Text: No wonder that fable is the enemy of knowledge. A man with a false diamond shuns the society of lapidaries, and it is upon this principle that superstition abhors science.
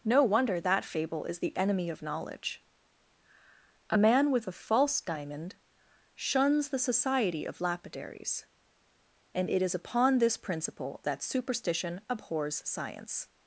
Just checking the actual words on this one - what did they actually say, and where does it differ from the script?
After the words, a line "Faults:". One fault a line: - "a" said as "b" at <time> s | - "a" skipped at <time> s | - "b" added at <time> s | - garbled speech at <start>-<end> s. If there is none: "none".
No wonder that fable is the enemy of knowledge. A man with a false diamond shuns the society of lapidaries, and it is upon this principle that superstition abhors science.
Faults:
none